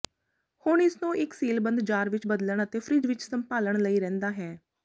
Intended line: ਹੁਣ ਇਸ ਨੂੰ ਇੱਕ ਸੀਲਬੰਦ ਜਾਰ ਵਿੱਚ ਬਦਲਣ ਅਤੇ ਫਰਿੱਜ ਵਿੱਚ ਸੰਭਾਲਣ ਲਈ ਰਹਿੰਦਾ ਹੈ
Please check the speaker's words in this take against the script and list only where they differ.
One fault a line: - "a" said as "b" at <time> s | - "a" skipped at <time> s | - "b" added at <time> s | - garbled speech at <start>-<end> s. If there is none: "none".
none